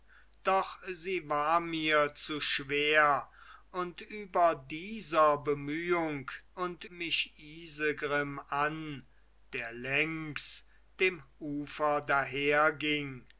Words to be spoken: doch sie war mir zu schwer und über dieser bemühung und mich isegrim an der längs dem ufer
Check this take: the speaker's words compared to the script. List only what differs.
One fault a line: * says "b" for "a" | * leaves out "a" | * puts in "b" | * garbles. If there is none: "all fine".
all fine